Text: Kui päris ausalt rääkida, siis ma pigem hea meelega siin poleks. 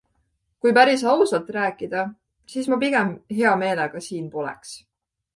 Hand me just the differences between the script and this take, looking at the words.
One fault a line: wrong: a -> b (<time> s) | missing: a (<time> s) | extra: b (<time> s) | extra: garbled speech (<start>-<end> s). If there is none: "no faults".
no faults